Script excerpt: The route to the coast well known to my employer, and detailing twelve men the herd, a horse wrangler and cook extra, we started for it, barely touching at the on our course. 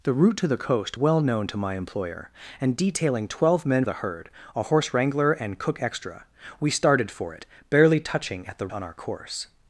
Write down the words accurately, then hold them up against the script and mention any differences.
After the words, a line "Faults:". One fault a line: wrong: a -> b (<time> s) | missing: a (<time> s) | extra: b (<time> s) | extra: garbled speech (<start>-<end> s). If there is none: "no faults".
The route to the coast well known to my employer, and detailing twelve men the herd, a horse wrangler and cook extra, we started for it, barely touching at the on our course.
Faults:
no faults